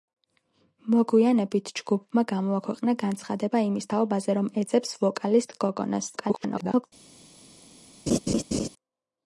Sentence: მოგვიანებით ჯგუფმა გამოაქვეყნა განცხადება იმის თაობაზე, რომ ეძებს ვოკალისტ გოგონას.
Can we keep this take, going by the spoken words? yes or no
no